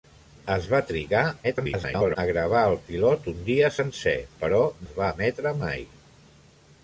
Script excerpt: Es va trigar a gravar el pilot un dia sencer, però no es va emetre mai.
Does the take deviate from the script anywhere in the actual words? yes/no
yes